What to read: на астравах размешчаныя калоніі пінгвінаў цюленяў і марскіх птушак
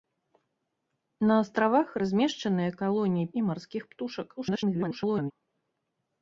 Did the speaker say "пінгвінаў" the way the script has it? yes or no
no